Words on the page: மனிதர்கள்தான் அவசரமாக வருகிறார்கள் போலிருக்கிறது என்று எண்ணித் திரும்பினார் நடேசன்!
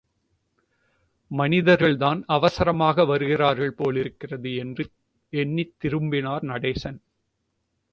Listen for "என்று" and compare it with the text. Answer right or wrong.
right